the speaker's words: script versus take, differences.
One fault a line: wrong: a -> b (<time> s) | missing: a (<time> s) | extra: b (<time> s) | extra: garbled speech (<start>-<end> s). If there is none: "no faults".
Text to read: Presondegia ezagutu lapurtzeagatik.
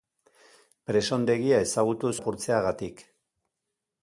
no faults